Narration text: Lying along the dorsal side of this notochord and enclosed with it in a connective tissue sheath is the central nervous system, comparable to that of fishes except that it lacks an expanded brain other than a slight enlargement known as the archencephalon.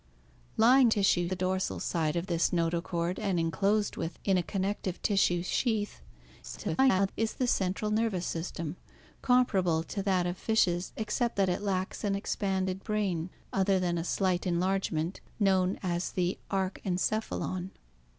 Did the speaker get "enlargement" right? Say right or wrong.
right